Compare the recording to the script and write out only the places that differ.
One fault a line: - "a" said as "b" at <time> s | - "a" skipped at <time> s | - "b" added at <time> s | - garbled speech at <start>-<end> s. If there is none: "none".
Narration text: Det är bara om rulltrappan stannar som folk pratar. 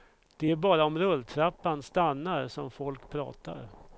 none